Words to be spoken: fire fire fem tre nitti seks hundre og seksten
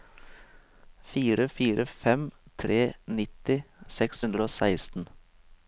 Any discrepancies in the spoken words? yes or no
no